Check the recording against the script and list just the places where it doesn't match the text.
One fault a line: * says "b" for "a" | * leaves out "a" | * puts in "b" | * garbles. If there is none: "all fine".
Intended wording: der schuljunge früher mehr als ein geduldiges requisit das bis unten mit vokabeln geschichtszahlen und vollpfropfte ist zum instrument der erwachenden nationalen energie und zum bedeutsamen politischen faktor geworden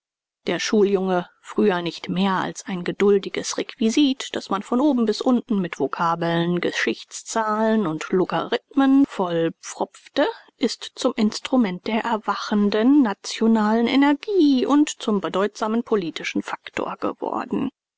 * puts in "nicht"
* puts in "man von oben"
* puts in "logarithmen"